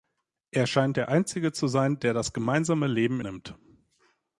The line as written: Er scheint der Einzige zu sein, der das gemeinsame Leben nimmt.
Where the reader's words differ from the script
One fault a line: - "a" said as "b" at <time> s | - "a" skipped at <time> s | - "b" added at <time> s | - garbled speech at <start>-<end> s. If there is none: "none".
none